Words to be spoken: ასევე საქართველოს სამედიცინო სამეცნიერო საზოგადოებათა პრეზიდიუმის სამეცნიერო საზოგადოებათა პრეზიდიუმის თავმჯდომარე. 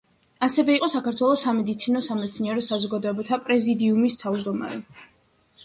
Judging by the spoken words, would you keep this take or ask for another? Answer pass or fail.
fail